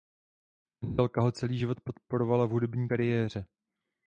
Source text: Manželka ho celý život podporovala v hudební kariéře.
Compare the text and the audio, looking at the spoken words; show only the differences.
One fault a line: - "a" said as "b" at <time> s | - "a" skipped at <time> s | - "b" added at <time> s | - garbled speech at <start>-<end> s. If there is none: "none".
none